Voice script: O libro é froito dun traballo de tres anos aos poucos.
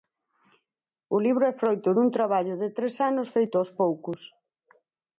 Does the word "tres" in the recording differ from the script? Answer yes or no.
no